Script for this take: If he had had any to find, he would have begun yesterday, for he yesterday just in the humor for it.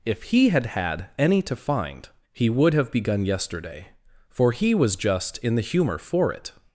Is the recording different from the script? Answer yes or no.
yes